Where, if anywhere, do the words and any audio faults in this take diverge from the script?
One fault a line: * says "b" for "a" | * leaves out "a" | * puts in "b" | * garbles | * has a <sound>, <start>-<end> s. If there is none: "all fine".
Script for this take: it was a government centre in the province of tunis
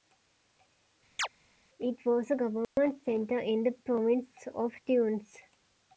* has a chirp, 1.2-1.3 s
* has a dropout, 2.6-2.8 s